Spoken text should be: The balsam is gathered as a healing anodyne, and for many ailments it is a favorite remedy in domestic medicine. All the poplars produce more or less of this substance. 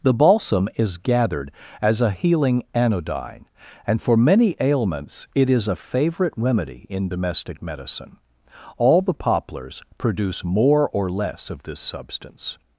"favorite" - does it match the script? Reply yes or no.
yes